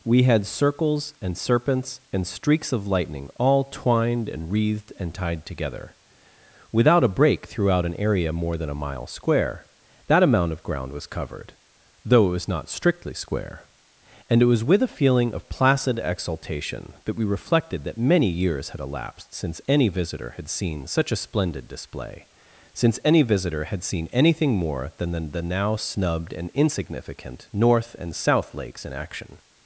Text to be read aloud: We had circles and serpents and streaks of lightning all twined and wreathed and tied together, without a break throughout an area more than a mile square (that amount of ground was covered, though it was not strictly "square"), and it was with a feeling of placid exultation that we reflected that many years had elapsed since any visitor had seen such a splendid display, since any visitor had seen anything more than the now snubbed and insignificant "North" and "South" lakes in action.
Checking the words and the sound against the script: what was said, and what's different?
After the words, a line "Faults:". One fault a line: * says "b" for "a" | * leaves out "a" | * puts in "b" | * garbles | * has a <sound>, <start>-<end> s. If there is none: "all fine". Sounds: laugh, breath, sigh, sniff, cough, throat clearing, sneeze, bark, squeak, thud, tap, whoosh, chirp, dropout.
We had circles and serpents and streaks of lightning all twined and wreathed and tied together, without a break throughout an area more than a mile square (that amount of ground was covered, though it was not strictly "square"), and it was with a feeling of placid exultation that we reflected that many years had elapsed since any visitor had seen such a splendid display, since any visitor had seen anything more than the the now snubbed and insignificant "North" and "South" lakes in action.
Faults:
* puts in "the"